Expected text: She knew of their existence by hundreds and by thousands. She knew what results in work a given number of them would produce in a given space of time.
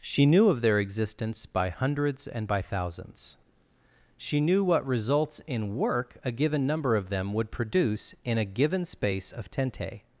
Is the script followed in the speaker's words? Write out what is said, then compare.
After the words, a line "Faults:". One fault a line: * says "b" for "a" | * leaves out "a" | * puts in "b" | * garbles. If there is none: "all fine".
She knew of their existence by hundreds and by thousands. She knew what results in work a given number of them would produce in a given space of tente.
Faults:
* says "tente" for "time"